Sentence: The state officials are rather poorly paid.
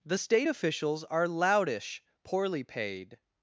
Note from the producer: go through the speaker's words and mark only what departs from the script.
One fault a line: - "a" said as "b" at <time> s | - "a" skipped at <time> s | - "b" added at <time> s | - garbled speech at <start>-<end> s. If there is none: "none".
- "rather" said as "loudish" at 1.3 s